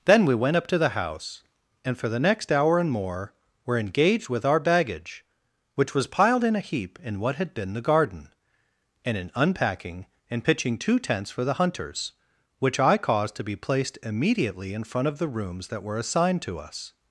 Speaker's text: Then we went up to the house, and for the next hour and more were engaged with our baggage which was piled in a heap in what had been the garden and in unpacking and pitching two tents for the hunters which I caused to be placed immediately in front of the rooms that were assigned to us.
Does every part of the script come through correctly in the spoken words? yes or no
yes